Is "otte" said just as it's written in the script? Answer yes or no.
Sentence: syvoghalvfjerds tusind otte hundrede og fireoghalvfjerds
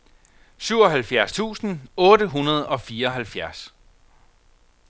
yes